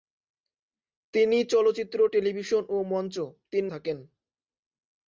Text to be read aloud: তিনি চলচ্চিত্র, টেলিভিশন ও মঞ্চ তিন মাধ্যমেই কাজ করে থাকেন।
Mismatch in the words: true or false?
true